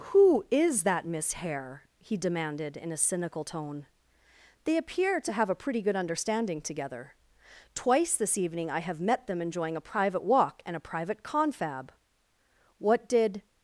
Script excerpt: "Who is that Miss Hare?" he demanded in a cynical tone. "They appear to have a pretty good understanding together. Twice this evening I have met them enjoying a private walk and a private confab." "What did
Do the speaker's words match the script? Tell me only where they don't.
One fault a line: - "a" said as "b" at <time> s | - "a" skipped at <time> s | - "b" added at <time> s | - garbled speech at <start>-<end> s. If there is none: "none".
none